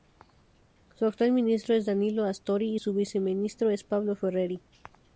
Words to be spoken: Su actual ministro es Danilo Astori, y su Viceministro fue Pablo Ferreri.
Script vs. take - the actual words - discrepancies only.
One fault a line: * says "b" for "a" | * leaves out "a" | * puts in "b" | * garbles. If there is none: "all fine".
* says "es" for "fue"